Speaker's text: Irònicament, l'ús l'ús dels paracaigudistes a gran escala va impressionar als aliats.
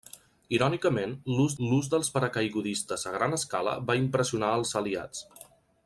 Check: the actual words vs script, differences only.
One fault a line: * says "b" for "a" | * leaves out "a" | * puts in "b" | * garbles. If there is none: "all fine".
all fine